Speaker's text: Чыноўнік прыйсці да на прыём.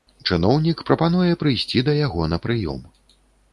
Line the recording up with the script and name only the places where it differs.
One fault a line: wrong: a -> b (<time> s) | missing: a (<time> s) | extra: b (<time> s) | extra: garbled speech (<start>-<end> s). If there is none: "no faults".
extra: прапануе (0.9 s)
extra: яго (2.0 s)